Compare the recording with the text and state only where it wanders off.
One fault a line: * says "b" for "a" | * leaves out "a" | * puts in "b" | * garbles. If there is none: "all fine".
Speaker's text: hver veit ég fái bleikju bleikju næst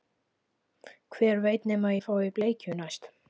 * puts in "nema"
* leaves out "bleikju"